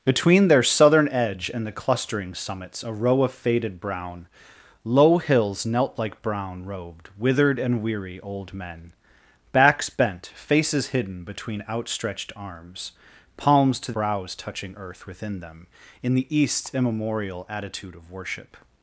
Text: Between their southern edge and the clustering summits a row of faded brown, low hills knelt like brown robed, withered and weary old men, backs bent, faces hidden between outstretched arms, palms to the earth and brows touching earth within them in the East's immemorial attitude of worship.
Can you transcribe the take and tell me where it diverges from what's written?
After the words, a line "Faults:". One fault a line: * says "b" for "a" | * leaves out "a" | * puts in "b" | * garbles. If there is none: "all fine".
Between their southern edge and the clustering summits a row of faded brown, low hills knelt like brown robed, withered and weary old men, backs bent, faces hidden between outstretched arms, palms to brows touching earth within them in the East's immemorial attitude of worship.
Faults:
* leaves out "the earth and"